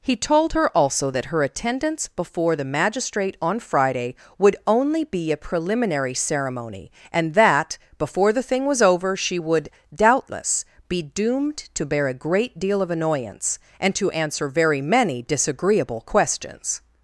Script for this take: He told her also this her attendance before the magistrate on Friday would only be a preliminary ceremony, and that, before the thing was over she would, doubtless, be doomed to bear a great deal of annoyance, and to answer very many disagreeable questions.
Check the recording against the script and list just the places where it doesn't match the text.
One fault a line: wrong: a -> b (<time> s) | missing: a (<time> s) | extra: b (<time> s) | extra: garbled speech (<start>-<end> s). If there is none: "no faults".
wrong: this -> that (1.1 s)